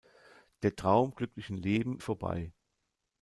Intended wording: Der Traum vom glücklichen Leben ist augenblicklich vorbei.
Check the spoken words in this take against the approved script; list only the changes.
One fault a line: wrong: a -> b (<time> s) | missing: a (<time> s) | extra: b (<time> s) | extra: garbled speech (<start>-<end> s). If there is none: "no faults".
missing: vom (1.1 s)
missing: ist augenblicklich (2.0 s)